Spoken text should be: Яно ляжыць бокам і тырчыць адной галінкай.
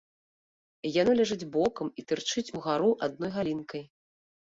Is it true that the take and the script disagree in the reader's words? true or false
true